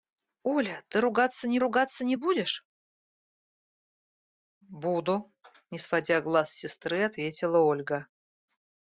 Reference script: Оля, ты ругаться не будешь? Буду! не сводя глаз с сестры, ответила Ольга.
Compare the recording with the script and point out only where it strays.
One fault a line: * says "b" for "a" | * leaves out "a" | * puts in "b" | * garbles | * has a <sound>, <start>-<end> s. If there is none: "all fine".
* puts in "ругаться не"